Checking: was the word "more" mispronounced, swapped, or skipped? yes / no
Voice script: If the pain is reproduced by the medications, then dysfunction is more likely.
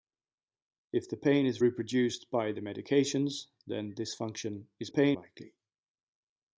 yes